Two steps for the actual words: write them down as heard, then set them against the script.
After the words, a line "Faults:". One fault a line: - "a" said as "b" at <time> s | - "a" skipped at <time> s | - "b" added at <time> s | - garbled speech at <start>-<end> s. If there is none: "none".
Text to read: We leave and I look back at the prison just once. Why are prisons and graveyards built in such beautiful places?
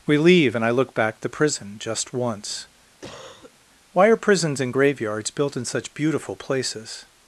We leave and I look back the prison just once. Why are prisons and graveyards built in such beautiful places?
Faults:
- "at" skipped at 1.2 s